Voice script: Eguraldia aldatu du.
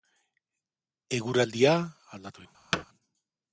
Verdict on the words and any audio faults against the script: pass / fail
fail